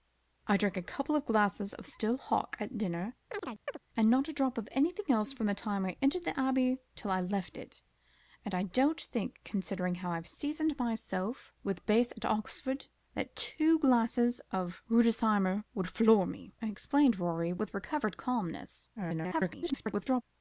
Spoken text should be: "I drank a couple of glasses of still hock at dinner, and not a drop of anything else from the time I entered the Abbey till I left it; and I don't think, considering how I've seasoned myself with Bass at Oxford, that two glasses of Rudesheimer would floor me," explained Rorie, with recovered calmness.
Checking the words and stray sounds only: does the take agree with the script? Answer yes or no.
no